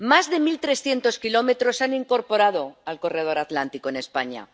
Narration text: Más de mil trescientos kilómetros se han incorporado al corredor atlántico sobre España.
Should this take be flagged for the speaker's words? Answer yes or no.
yes